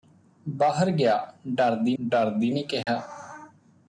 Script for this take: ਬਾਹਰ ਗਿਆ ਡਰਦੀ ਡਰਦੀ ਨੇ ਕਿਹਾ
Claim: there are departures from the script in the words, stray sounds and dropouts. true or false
true